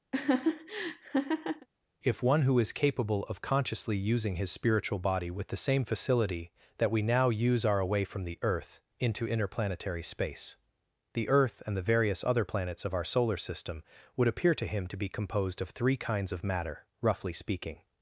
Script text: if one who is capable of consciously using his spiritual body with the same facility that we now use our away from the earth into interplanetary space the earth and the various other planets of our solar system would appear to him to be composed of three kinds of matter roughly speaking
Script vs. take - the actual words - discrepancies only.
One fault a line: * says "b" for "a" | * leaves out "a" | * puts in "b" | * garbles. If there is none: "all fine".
all fine